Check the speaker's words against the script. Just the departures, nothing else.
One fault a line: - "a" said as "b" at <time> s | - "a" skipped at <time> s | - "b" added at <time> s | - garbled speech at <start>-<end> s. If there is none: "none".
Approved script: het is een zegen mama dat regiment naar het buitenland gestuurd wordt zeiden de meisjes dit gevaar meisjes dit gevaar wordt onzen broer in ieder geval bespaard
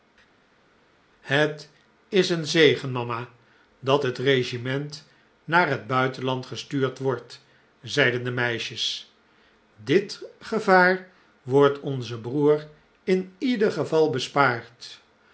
- "het" added at 4.0 s
- "meisjes dit gevaar" skipped at 11.1 s